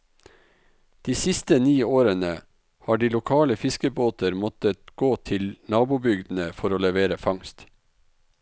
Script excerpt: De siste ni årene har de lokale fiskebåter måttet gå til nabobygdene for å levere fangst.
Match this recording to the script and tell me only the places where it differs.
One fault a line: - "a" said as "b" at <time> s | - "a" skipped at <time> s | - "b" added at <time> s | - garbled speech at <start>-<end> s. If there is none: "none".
none